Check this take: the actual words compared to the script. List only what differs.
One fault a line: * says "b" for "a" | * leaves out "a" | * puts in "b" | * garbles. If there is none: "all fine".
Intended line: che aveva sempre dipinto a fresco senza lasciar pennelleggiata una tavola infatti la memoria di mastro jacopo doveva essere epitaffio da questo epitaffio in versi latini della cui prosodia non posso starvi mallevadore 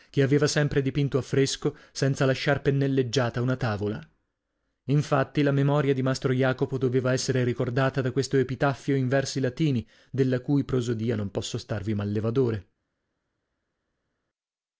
* says "ricordata" for "epitaffio"